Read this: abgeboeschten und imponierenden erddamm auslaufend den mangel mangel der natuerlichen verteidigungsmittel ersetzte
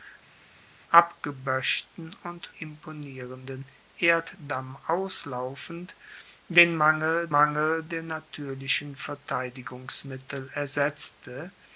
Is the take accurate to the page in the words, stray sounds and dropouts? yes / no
yes